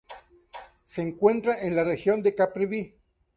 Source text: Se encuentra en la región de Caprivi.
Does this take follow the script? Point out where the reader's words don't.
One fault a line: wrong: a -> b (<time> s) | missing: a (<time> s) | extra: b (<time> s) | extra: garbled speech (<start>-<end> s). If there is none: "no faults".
no faults